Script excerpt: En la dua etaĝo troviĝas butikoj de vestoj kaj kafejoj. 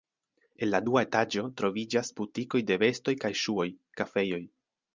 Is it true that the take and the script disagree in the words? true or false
true